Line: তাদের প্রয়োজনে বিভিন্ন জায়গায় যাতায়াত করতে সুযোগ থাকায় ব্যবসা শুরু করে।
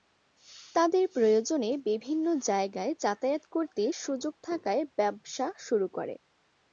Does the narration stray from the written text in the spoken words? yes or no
no